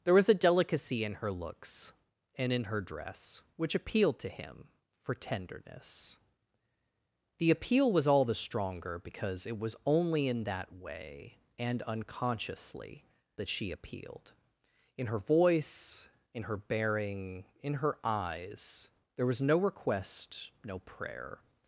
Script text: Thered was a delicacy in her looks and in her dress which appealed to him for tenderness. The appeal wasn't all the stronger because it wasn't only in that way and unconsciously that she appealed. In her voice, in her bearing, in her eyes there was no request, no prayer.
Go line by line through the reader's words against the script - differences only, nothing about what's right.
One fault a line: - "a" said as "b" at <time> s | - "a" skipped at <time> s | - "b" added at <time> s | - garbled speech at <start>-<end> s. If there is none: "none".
- "Thered" said as "There" at 0.0 s
- "wasn't" said as "was" at 7.9 s
- "wasn't" said as "was" at 9.6 s